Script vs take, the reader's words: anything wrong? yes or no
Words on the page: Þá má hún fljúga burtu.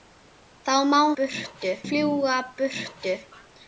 yes